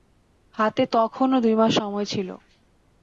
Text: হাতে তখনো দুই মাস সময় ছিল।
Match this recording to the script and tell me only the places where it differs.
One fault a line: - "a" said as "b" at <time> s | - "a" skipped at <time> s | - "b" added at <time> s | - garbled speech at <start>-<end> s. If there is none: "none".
none